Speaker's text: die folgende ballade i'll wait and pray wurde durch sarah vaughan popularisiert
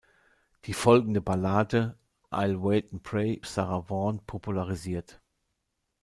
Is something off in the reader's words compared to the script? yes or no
yes